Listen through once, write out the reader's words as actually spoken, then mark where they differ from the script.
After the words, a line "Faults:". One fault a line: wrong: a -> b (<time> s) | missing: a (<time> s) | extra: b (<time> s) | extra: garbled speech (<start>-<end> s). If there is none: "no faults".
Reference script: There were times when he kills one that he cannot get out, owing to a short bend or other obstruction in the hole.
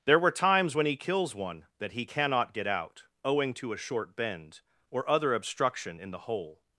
There were times when he kills one that he cannot get out, owing to a short bend or other obstruction in the hole.
Faults:
no faults